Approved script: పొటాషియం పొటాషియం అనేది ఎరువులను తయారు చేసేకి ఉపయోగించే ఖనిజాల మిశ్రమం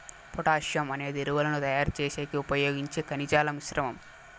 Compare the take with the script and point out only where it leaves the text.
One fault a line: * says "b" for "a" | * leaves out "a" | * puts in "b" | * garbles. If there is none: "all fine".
* leaves out "పొటాషియం"